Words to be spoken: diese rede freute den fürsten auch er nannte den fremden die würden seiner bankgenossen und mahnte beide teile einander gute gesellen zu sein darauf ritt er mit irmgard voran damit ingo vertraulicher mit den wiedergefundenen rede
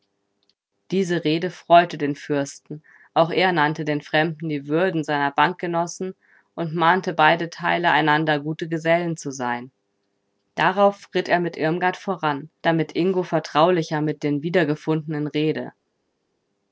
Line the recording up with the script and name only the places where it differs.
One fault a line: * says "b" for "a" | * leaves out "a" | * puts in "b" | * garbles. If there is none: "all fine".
all fine